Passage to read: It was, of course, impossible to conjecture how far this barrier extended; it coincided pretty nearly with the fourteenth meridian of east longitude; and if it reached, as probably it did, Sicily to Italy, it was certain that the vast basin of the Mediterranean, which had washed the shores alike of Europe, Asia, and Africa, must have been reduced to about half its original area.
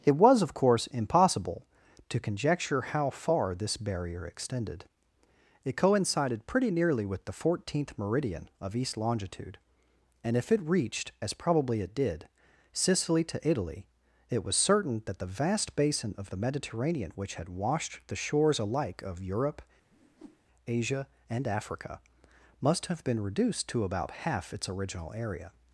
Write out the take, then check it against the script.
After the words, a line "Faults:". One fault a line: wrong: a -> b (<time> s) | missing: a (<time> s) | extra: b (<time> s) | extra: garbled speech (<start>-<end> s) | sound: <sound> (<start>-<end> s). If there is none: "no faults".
It was, of course, impossible to conjecture how far this barrier extended; it coincided pretty nearly with the fourteenth meridian of east longitude; and if it reached, as probably it did, Sicily to Italy, it was certain that the vast basin of the Mediterranean, which had washed the shores alike of Europe, Asia, and Africa, must have been reduced to about half its original area.
Faults:
sound: whoosh (19.9-20.4 s)